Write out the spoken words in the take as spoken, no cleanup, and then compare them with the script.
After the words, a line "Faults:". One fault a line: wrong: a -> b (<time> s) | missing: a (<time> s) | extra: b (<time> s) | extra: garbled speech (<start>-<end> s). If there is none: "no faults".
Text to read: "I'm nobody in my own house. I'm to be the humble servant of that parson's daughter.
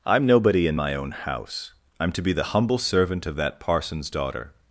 "I'm nobody in my own house. I'm to be the humble servant of that parson's daughter.
Faults:
no faults